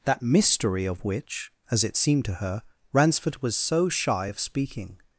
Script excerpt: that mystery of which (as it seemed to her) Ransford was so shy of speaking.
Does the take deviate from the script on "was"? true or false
false